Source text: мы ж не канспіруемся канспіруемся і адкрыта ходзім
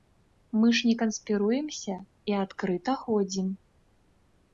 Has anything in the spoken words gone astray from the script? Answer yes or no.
yes